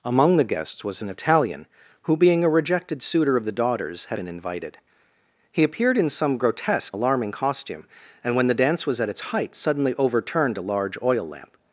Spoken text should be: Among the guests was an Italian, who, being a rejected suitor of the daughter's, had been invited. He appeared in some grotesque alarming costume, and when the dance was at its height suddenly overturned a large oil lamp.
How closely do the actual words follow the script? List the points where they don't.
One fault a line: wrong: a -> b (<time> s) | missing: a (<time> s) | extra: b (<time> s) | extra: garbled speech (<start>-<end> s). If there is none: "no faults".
no faults